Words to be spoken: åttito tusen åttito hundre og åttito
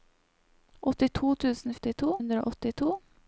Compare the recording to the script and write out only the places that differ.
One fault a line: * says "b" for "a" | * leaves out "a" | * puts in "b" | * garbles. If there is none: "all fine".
all fine